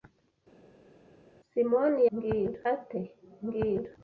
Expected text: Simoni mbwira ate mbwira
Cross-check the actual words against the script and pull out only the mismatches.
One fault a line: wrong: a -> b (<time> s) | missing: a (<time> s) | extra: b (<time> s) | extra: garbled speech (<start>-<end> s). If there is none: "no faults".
no faults